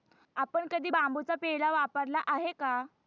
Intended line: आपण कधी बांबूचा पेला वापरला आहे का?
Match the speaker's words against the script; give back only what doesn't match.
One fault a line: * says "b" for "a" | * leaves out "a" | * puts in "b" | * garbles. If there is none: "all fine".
all fine